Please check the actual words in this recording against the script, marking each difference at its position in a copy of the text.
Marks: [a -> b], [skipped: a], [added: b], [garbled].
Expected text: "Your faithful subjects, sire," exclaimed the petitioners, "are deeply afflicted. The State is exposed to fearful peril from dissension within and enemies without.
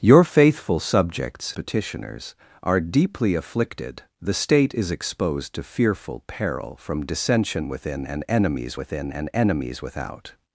"Your faithful subjects, [skipped: sire," exclaimed the] petitioners, "are deeply afflicted. The State is exposed to fearful peril from dissension within and enemies [added: within and enemies] without.